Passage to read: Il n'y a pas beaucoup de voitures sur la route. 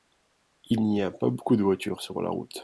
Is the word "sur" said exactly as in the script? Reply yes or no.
yes